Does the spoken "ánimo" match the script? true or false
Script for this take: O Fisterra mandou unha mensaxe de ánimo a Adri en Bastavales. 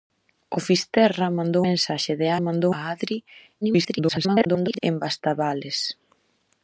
false